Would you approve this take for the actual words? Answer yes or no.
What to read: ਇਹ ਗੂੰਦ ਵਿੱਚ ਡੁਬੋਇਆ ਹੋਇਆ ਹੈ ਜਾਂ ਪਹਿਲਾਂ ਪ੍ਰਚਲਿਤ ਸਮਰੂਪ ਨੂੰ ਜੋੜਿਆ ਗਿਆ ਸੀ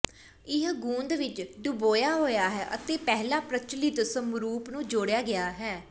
no